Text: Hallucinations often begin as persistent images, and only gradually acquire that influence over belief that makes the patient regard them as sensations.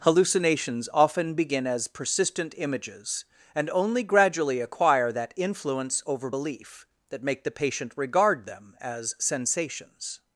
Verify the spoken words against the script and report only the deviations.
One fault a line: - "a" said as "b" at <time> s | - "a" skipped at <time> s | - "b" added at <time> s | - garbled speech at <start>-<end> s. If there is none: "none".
- "makes" said as "make" at 7.2 s